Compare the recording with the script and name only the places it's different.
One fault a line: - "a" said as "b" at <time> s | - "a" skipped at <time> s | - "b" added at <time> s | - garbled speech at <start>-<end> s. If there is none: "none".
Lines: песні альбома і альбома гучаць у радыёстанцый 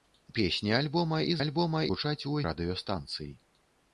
none